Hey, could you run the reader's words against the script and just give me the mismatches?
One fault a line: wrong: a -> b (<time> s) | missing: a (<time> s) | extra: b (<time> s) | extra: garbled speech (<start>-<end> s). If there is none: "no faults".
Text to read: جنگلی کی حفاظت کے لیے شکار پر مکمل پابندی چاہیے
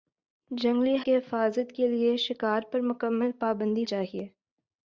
no faults